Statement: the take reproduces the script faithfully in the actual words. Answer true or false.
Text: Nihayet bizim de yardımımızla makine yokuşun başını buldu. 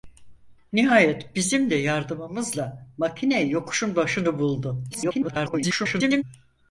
false